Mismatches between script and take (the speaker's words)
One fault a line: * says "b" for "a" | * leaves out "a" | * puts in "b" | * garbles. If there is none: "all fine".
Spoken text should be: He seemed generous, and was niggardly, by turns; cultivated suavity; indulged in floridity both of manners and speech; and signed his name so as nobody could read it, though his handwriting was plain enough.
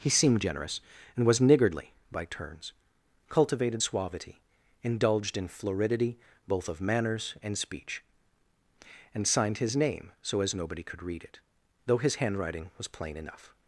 all fine